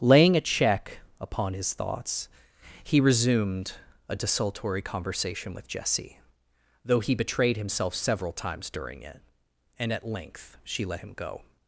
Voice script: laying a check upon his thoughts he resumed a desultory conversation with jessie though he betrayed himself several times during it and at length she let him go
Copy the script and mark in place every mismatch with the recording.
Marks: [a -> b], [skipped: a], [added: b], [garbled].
laying a check upon his thoughts he resumed a desultory conversation with jessie though he betrayed himself several times during it and at length she let him go